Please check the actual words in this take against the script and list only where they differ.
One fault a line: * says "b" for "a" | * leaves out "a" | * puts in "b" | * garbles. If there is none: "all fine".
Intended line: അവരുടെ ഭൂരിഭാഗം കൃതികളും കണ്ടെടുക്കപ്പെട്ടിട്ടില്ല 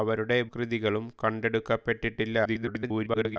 * leaves out "ഭൂരിഭാഗം"
* garbles